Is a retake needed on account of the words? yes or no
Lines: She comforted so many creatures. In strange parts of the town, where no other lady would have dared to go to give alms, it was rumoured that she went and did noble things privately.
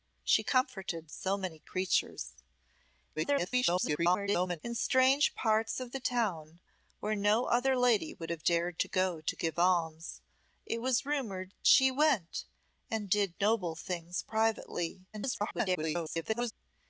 yes